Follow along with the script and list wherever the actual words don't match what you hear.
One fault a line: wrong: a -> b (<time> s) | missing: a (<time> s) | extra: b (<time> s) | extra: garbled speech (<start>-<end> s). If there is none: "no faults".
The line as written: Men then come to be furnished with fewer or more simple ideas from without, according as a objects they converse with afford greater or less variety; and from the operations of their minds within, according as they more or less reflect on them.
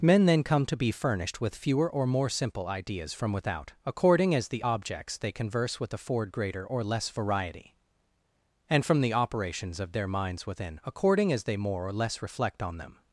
wrong: a -> the (4.5 s)